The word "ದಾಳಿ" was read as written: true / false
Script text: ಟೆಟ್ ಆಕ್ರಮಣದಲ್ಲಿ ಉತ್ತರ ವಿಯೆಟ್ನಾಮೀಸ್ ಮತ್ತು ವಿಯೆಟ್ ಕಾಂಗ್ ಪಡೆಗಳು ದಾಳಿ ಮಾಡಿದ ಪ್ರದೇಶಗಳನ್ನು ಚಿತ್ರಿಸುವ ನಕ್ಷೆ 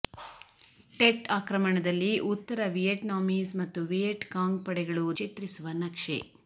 false